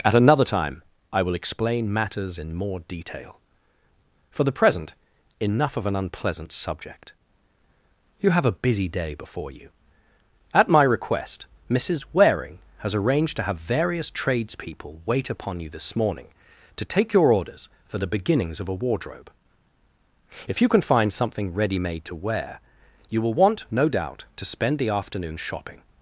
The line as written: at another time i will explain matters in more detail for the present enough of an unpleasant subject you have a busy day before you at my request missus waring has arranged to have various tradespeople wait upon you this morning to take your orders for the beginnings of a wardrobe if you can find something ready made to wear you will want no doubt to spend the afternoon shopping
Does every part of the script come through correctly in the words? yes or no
yes